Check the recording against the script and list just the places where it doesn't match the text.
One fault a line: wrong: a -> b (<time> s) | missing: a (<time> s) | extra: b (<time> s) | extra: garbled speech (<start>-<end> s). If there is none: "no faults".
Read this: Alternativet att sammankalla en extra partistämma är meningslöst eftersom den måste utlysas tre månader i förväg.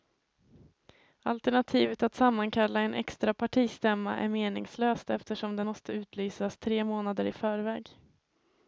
no faults